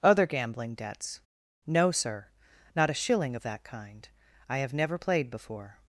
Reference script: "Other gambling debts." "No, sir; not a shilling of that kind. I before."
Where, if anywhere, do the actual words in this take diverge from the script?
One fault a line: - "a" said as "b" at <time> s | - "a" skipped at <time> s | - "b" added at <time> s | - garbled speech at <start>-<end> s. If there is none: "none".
- "have never played" added at 4.6 s